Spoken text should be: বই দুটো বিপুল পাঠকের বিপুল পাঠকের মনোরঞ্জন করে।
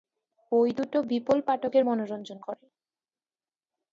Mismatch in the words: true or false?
true